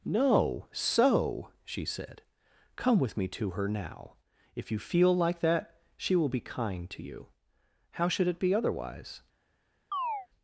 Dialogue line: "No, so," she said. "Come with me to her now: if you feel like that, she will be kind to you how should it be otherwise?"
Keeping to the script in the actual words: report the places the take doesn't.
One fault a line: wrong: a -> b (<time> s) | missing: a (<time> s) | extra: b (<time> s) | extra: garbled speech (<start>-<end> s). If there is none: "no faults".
no faults